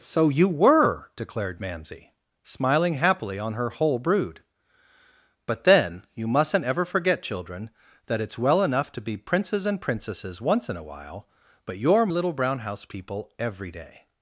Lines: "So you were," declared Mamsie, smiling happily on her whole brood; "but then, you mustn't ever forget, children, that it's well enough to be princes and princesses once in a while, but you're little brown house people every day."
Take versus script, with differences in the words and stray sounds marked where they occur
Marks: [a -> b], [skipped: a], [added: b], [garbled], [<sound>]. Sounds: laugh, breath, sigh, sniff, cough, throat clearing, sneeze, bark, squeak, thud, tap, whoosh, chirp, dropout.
"So you were," declared Mamsie, smiling happily on her whole brood; "but then, you mustn't ever forget, children, that it's well enough to be princes and princesses once in a while, but you're little brown house people every day."